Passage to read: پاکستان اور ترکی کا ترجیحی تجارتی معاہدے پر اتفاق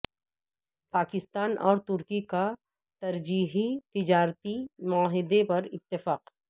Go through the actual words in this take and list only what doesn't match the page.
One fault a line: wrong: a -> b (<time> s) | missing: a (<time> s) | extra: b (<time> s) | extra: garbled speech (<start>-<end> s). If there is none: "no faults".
no faults